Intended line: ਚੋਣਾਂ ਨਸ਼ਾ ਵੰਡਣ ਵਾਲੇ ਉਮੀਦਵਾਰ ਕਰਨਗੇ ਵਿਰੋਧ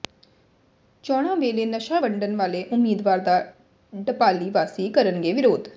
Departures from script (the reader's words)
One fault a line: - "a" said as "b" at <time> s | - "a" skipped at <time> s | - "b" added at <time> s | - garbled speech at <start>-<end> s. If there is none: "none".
- "ਵੇਲੇ" added at 1.4 s
- "ਦਾ ਢਪਾਲੀ ਵਾਸੀ" added at 3.2 s